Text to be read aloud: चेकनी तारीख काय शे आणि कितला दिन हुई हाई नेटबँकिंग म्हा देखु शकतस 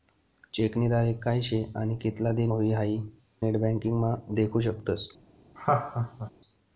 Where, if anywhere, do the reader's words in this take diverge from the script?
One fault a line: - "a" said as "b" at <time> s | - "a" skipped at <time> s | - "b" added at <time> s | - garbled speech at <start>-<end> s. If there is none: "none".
none